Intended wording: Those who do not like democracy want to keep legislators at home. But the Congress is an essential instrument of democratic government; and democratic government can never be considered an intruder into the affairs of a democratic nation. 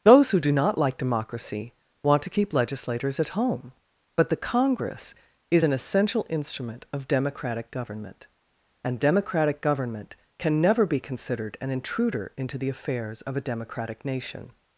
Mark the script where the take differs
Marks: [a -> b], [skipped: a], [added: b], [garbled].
Those who do not like democracy want to keep legislators at home. But the Congress is an essential instrument of democratic government; and democratic government can never be considered an intruder into the affairs of a democratic nation.